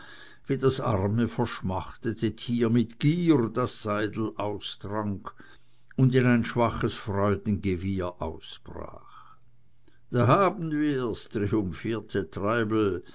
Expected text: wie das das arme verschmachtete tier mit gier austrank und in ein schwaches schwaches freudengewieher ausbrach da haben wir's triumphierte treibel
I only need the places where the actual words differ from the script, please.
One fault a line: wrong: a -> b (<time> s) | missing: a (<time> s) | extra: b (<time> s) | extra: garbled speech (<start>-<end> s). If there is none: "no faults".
missing: das (0.8 s)
extra: das seidel (3.5 s)
missing: schwaches (6.9 s)